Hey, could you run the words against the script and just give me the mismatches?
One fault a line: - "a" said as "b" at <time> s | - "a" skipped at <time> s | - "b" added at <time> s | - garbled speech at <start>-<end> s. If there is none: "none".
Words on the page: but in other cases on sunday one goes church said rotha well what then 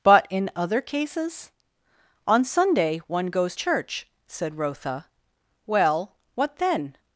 none